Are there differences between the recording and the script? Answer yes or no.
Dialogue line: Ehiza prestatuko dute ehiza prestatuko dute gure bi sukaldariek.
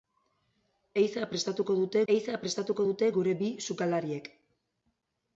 no